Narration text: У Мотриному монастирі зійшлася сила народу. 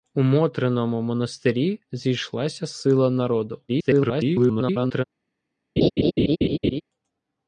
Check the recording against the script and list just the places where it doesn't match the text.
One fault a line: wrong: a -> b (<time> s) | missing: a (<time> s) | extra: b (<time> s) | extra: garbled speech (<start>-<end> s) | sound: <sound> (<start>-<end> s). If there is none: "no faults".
extra: garbled speech (3.7-5.0 s)
sound: laugh (5.8-6.8 s)